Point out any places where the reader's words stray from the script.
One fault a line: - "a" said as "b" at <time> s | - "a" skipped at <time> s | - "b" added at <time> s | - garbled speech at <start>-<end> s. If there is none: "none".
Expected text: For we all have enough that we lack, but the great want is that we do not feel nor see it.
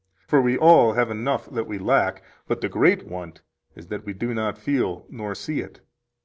none